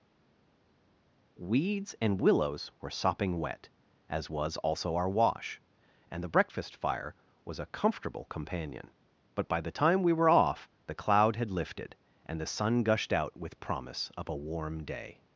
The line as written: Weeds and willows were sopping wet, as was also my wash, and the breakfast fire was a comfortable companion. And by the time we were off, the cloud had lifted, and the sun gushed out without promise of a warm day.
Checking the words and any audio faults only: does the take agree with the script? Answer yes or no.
no